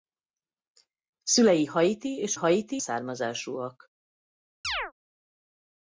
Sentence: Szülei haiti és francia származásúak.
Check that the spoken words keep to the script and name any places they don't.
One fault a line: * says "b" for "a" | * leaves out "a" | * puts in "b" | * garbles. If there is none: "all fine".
* says "haiti" for "francia"